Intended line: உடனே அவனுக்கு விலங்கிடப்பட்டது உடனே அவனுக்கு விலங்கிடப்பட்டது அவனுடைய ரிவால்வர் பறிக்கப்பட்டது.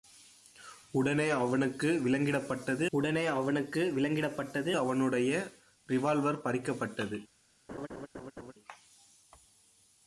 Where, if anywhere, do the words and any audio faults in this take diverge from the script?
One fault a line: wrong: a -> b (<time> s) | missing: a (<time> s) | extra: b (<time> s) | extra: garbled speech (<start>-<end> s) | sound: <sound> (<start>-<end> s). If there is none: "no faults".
sound: laugh (7.7-8.5 s)